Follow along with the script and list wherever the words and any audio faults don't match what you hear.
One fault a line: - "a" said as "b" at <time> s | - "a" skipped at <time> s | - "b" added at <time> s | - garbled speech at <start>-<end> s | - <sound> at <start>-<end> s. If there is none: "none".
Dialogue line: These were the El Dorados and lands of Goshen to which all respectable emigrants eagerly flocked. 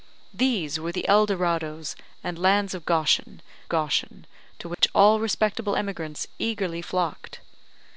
- "Goshen" added at 3.7 s
- dropout at 4.7-4.8 s